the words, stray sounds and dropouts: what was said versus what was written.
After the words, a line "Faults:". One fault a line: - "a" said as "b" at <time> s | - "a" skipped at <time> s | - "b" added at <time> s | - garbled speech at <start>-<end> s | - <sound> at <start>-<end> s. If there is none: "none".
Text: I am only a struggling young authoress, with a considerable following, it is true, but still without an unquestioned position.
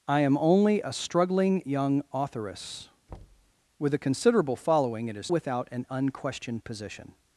I am only a struggling young authoress, with a considerable following, it is without an unquestioned position.
Faults:
- thud at 3.1-3.5 s
- "true but still" skipped at 5.3 s